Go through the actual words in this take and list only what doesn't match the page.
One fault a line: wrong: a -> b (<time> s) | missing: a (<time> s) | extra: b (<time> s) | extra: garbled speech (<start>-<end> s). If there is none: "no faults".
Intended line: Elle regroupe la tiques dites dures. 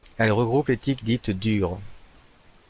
wrong: la -> les (0.7 s)